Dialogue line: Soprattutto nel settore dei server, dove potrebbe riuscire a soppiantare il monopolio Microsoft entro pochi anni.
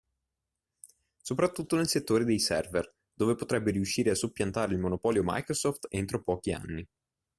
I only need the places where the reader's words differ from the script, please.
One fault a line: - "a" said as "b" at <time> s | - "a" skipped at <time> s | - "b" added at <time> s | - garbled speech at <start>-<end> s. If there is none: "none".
none